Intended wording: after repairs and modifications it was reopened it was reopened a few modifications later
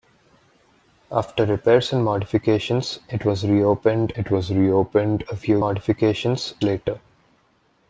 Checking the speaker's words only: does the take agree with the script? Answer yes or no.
yes